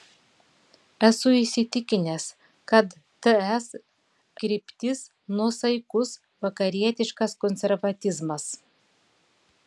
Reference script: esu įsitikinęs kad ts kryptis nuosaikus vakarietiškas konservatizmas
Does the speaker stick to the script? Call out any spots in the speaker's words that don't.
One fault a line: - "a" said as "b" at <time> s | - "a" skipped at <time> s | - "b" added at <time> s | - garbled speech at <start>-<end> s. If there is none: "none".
none